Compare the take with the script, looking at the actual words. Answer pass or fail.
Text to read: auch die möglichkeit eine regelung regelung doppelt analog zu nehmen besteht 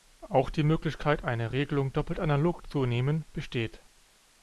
fail